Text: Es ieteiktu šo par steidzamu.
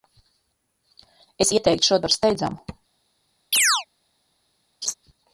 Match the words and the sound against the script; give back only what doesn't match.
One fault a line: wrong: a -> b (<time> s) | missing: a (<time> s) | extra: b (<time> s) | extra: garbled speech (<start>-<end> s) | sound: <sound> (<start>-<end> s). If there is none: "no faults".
sound: chirp (3.5-3.9 s)
sound: laugh (4.8-4.9 s)